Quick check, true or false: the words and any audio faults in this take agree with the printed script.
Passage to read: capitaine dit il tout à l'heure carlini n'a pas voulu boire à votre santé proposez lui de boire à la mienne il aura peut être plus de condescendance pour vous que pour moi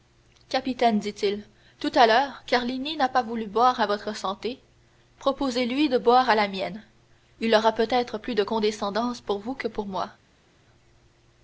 true